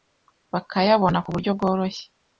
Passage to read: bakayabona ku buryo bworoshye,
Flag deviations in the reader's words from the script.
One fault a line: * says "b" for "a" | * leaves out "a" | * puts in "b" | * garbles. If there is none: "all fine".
all fine